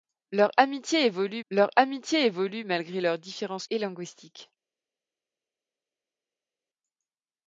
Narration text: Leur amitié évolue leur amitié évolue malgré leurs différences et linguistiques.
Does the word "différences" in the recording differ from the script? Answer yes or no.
no